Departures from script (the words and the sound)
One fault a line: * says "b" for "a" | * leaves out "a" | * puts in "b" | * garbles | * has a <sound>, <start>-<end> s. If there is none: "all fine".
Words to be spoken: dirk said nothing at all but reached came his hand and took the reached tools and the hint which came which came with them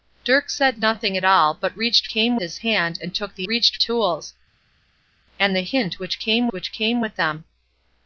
all fine